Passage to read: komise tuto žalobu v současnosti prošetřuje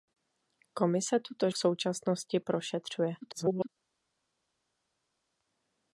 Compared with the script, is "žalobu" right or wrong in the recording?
wrong